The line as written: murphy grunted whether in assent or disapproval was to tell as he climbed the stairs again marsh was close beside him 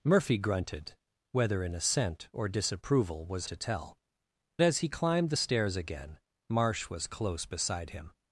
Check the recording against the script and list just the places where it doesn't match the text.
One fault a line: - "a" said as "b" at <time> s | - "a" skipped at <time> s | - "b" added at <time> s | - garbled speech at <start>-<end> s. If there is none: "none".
none